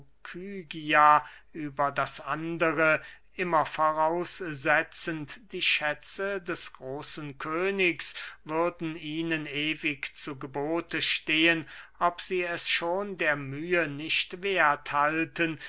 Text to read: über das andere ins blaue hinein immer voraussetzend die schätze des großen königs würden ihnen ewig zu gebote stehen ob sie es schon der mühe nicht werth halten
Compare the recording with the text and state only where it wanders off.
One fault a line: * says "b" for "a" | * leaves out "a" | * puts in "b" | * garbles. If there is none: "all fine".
* leaves out "ins blaue hinein"